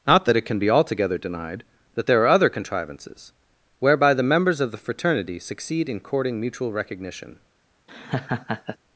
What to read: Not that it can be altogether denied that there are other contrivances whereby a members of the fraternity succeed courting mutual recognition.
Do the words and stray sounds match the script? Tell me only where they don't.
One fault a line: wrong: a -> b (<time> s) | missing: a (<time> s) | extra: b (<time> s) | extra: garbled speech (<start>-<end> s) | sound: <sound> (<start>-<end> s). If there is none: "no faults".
wrong: a -> the (4.1 s)
extra: in (5.9 s)
sound: laugh (7.9-8.8 s)